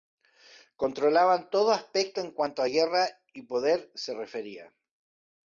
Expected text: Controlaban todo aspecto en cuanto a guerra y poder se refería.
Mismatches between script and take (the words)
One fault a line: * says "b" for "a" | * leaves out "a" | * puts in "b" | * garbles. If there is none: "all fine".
all fine